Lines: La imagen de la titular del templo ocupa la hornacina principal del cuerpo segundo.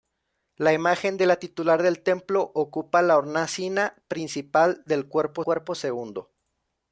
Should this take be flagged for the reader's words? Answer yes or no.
yes